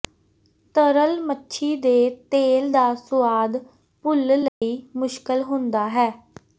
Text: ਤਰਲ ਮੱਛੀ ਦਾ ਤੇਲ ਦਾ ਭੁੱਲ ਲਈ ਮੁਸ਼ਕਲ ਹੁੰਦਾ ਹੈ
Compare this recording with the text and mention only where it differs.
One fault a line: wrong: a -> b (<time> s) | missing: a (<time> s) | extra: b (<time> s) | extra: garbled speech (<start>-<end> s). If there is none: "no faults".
wrong: ਦਾ -> ਦੇ (1.8 s)
extra: ਸੁਆਦ (3.0 s)